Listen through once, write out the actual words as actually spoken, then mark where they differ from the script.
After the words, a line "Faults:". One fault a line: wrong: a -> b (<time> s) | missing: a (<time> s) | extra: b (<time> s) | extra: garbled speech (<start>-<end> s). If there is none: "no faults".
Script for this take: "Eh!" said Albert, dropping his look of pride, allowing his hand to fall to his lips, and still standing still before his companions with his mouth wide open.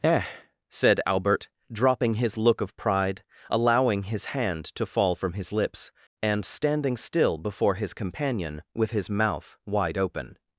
"Eh!" said Albert, dropping his look of pride, allowing his hand to fall from his lips, and standing still before his companion with his mouth wide open.
Faults:
wrong: to -> from (5.1 s)
missing: still (6.4 s)
wrong: companions -> companion (7.9 s)